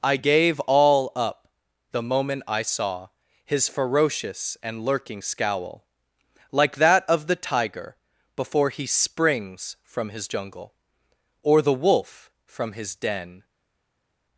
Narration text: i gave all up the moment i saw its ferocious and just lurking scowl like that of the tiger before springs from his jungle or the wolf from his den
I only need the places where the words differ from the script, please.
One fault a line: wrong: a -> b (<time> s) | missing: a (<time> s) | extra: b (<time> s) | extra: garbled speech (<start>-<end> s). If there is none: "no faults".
wrong: its -> his (3.5 s)
missing: just (4.9 s)
extra: he (8.7 s)